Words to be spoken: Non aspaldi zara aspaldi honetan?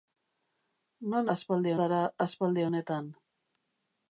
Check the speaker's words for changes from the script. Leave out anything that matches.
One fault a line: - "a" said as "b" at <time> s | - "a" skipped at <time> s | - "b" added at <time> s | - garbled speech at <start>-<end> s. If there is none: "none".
none